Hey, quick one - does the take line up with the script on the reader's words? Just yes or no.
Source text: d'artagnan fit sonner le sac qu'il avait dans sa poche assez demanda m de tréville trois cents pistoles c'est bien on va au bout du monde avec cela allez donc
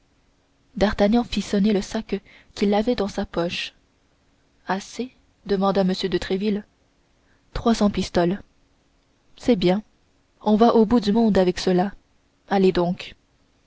yes